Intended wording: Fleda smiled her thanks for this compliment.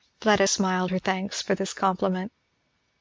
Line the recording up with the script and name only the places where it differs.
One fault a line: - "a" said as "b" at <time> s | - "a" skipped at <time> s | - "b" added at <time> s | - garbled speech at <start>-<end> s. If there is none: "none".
none